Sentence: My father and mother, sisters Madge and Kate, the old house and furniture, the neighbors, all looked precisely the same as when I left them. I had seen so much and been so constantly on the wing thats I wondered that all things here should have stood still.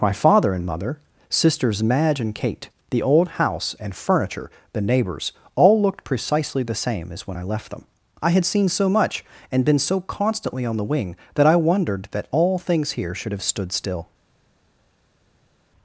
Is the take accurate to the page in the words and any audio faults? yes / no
no